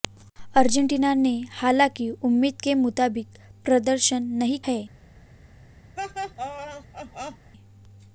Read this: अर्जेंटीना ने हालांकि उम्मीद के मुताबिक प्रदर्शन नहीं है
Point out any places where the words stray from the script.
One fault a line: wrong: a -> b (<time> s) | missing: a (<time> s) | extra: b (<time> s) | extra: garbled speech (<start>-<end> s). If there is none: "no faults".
no faults